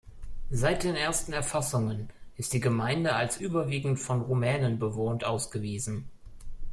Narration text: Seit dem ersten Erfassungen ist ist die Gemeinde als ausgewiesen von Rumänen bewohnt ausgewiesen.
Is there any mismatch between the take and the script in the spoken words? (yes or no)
yes